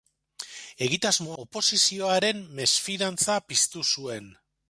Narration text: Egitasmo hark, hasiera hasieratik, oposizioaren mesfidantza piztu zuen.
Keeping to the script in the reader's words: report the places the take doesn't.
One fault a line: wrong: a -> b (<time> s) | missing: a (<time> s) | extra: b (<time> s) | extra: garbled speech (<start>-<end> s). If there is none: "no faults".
missing: hark hasiera hasieratik (1.4 s)